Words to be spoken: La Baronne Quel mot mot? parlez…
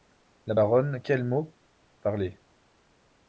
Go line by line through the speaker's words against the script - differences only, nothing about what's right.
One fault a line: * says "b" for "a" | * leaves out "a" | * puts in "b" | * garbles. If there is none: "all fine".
* leaves out "mot"